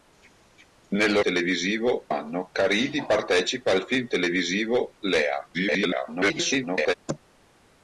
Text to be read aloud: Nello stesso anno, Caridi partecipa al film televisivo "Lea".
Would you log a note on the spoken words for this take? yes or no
yes